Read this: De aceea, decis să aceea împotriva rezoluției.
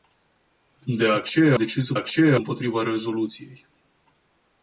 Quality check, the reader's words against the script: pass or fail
pass